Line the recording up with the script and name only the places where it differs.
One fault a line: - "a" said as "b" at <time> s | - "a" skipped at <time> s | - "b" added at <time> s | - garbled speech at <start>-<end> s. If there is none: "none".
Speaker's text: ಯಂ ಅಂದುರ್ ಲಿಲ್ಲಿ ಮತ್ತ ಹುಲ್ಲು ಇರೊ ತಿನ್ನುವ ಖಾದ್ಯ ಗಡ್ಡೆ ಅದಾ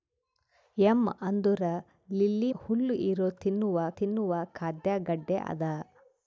- "ಮತ್ತ" skipped at 2.5 s
- "ತಿನ್ನುವ" added at 4.0 s